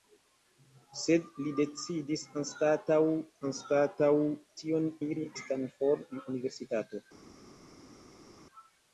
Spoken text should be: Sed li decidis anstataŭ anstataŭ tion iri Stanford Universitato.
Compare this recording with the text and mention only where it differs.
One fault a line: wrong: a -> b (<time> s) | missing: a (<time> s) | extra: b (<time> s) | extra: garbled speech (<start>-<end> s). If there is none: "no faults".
no faults